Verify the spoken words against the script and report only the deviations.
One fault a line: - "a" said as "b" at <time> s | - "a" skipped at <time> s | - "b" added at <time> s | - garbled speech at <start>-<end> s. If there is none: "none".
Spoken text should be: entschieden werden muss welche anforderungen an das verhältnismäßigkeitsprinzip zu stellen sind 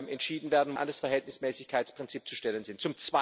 - "muss welche anforderungen" skipped at 0.7 s